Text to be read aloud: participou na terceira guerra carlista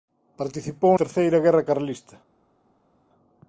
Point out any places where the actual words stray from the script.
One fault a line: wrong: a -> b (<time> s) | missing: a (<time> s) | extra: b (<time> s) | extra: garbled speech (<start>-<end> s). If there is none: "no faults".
missing: na (0.9 s)